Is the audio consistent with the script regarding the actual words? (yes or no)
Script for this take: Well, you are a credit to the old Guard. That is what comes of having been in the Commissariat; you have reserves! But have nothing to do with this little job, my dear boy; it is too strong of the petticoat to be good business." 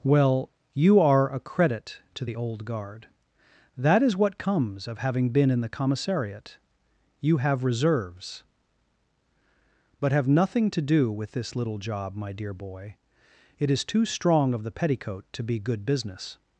yes